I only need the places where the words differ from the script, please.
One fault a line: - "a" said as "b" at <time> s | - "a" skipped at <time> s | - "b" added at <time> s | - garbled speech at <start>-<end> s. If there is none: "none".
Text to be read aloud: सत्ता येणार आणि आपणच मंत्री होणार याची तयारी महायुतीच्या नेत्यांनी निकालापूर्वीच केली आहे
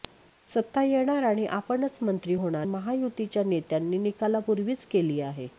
- "याची तयारी" skipped at 2.7 s